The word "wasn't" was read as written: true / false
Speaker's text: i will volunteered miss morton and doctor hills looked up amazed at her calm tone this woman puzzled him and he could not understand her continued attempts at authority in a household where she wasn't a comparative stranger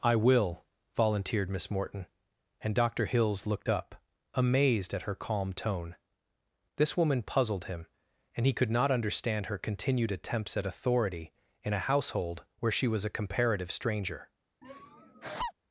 false